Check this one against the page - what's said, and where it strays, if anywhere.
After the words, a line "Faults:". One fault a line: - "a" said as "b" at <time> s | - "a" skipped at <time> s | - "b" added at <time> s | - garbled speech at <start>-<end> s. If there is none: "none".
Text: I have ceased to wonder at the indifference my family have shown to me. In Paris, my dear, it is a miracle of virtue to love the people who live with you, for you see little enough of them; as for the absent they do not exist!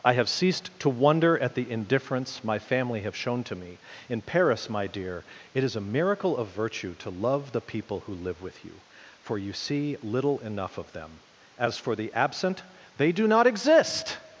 I have ceased to wonder at the indifference my family have shown to me. In Paris, my dear, it is a miracle of virtue to love the people who live with you, for you see little enough of them; as for the absent they do not exist!
Faults:
none